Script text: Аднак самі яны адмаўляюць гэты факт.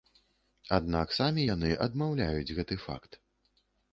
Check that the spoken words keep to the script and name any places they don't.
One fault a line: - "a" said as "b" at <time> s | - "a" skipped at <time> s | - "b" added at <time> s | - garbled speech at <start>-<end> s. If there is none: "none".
none